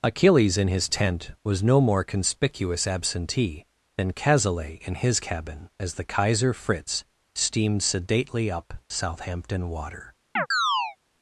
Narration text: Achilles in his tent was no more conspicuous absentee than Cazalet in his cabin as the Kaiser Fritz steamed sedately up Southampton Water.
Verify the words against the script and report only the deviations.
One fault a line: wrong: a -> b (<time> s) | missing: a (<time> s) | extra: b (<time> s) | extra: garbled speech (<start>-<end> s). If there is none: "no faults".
no faults